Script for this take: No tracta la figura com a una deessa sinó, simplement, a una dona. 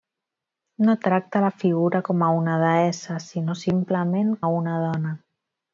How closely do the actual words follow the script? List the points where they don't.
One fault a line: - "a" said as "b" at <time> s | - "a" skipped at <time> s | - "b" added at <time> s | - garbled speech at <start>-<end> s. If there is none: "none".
none